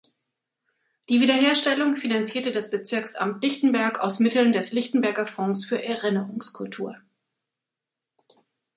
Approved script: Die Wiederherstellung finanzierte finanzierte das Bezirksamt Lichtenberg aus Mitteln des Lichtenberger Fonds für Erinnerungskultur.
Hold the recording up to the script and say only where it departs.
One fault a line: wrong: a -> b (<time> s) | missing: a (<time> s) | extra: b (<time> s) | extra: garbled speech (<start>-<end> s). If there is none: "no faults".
missing: finanzierte (2.5 s)